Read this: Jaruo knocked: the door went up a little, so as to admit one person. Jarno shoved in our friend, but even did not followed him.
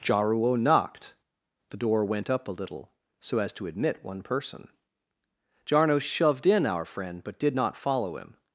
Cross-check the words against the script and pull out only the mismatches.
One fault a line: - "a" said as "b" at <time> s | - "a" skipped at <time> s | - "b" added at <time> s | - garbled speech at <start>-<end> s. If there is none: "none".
- "even" skipped at 7.4 s
- "followed" said as "follow" at 7.8 s